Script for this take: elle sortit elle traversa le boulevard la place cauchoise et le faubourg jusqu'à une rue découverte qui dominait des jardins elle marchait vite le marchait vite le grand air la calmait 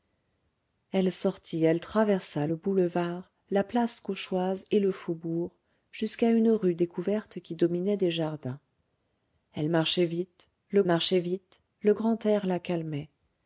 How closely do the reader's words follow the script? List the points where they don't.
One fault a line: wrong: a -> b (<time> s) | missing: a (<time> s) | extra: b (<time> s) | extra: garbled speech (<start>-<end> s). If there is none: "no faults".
no faults